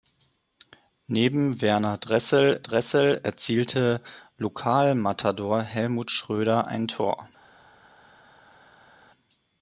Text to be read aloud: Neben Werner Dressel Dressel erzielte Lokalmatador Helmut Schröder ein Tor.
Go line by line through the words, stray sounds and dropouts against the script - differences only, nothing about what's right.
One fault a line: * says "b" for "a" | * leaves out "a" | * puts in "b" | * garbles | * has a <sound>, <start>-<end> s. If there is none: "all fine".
all fine